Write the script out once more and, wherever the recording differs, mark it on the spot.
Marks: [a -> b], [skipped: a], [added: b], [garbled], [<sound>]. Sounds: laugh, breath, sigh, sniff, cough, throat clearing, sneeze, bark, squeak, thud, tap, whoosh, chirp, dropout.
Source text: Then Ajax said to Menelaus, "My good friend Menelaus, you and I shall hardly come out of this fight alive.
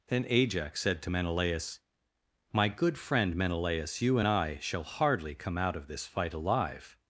Then Ajax said to Menelaus, "My good friend Menelaus, you and I shall hardly come out of this fight alive.